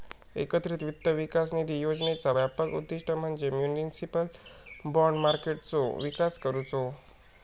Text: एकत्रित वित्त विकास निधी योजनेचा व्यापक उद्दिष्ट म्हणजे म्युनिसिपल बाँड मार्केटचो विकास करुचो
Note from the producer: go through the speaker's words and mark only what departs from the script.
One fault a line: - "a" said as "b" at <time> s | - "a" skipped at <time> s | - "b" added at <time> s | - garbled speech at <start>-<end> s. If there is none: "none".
none